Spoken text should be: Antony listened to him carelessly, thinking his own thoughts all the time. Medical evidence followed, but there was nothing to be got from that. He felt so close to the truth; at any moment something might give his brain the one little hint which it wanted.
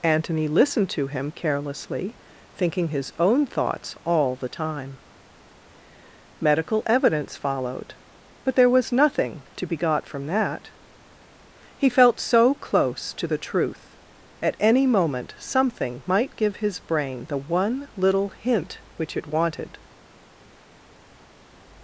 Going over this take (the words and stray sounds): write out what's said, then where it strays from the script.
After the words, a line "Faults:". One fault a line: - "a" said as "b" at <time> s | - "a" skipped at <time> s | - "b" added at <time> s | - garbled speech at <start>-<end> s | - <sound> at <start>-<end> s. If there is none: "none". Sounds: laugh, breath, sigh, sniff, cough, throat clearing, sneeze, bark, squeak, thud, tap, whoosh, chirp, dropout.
Antony listened to him carelessly, thinking his own thoughts all the time. Medical evidence followed, but there was nothing to be got from that. He felt so close to the truth; at any moment something might give his brain the one little hint which it wanted.
Faults:
none